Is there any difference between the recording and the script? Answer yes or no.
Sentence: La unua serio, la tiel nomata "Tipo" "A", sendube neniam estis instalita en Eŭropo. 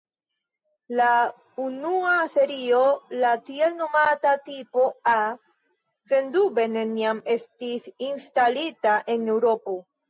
no